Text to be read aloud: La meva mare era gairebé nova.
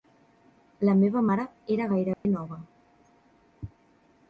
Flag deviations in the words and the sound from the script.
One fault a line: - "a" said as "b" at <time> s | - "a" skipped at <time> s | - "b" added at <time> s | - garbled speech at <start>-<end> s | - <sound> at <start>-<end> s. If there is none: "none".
- dropout at 2.1-2.2 s